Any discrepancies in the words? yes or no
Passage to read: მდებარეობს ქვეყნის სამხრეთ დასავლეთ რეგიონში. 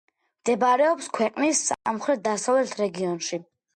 no